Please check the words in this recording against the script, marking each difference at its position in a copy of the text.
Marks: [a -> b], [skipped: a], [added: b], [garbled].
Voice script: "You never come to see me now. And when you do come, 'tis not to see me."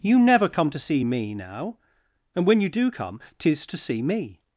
"You never come to see me now. And when you do come, 'tis [skipped: not] to see me."